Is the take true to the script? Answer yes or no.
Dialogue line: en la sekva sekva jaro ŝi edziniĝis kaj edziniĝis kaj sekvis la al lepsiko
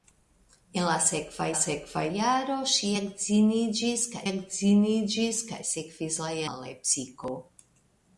yes